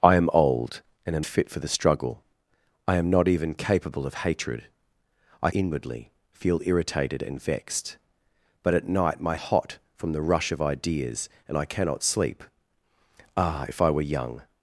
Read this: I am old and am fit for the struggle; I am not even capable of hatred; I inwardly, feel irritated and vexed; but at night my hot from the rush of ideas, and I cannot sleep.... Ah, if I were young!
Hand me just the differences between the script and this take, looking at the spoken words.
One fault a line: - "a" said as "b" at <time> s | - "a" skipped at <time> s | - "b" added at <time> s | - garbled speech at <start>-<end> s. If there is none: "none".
none